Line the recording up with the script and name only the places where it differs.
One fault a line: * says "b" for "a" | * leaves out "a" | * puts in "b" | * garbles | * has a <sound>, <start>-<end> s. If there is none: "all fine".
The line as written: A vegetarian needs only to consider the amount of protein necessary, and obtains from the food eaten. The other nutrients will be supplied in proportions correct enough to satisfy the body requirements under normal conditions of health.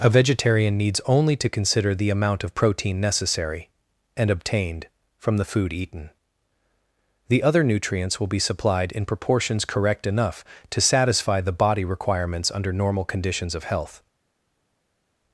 * says "obtained" for "obtains"